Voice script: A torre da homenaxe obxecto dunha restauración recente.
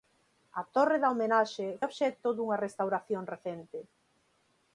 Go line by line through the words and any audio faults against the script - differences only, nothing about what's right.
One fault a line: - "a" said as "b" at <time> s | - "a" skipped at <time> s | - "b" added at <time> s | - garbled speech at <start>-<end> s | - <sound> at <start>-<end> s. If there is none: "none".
none